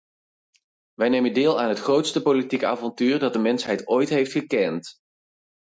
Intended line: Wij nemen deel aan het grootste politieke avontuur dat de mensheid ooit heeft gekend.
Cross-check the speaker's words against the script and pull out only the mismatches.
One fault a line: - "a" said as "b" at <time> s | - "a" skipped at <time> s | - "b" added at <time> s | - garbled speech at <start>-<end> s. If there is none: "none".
none